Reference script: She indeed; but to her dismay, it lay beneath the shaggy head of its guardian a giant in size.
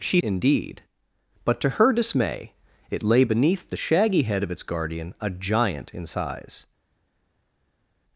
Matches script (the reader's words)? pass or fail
pass